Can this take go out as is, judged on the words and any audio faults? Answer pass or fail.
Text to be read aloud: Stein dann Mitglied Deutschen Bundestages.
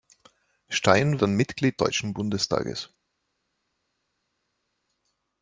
pass